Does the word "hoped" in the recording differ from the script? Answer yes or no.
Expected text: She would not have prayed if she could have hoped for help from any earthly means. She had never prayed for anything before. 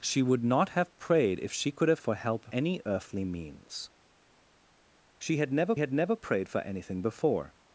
yes